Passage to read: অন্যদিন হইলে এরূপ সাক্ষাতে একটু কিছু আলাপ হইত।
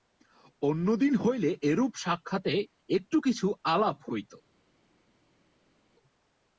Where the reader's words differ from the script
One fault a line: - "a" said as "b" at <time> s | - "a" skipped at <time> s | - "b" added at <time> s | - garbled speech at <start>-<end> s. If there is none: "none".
none